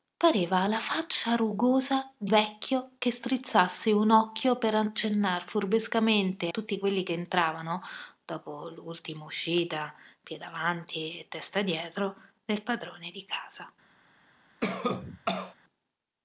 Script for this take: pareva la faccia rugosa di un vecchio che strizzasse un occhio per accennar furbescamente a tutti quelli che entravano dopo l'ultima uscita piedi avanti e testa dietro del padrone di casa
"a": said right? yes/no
no